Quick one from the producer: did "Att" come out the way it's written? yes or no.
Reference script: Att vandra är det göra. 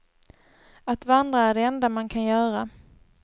yes